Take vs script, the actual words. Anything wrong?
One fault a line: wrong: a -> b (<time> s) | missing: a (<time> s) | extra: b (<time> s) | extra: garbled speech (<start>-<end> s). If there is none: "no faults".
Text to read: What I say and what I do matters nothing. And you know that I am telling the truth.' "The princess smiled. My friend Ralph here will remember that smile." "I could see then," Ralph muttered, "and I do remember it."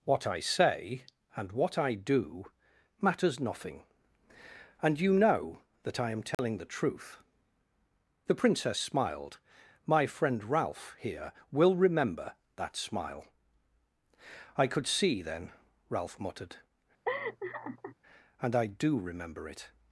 no faults